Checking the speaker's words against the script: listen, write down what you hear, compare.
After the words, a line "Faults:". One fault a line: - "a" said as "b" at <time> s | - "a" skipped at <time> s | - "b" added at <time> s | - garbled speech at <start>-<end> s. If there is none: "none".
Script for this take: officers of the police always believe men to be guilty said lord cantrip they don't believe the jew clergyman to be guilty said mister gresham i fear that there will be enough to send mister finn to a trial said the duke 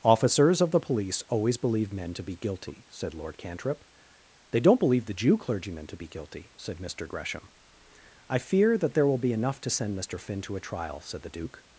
officers of the police always believe men to be guilty said lord cantrip they don't believe the jew clergyman to be guilty said mister gresham i fear that there will be enough to send mister finn to a trial said the duke
Faults:
none